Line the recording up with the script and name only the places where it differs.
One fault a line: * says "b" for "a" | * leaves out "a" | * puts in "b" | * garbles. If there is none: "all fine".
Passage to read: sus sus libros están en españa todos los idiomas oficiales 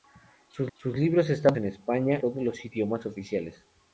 all fine